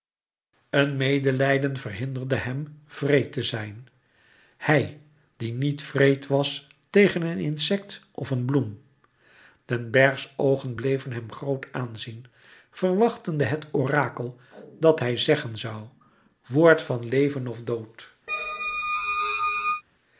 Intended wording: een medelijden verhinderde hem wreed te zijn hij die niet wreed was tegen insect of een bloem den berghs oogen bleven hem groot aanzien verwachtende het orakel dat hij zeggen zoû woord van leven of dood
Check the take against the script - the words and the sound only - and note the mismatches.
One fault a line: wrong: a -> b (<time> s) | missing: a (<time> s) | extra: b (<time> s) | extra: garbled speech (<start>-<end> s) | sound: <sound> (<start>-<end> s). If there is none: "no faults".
extra: een (7.2 s)
sound: squeak (18.3-19.8 s)